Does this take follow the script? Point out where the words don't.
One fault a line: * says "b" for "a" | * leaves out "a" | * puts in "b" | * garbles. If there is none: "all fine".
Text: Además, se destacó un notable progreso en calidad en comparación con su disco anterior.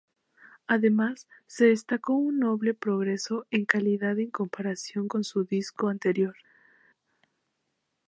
all fine